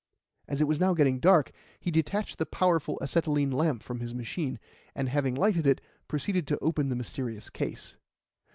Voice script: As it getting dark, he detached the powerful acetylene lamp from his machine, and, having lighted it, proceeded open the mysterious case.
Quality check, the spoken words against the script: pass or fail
fail